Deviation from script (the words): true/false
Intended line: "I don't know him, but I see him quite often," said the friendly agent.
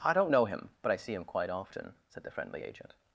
false